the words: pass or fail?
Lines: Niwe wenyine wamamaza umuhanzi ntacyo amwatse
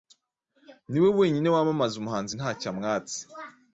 pass